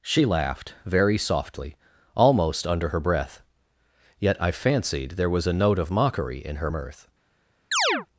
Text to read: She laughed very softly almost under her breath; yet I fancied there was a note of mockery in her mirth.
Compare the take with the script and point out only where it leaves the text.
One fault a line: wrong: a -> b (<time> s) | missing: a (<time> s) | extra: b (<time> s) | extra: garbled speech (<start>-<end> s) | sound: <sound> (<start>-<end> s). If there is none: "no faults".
sound: chirp (7.7-8.1 s)